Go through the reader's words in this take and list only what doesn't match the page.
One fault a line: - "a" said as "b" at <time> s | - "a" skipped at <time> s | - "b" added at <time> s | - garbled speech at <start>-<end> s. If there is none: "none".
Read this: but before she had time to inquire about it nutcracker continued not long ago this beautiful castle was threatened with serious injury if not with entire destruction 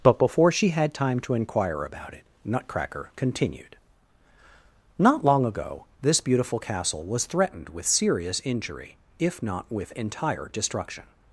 none